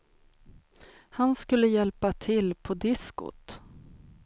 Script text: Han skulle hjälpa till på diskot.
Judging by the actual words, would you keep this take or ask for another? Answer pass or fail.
pass